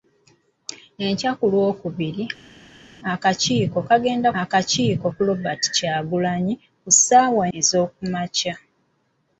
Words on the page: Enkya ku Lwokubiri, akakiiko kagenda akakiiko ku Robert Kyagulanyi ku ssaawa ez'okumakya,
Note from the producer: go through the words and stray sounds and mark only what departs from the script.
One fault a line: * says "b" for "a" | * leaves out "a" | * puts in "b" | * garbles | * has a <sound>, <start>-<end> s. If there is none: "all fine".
all fine